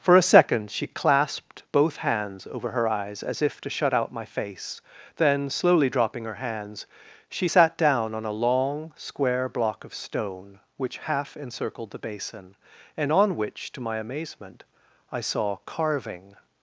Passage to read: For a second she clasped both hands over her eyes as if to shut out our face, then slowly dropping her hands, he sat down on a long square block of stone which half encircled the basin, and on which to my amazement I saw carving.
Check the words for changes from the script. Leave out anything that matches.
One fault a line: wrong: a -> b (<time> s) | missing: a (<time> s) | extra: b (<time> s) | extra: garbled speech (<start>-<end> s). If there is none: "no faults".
wrong: our -> my (4.1 s)
wrong: he -> she (7.3 s)